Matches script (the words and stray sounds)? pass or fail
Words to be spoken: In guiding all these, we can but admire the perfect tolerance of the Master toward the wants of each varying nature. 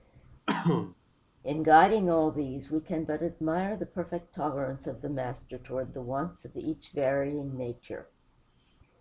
fail